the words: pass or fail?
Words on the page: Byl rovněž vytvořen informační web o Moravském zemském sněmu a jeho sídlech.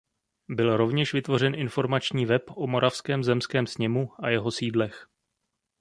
pass